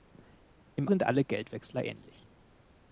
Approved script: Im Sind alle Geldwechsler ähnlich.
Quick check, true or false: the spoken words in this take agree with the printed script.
true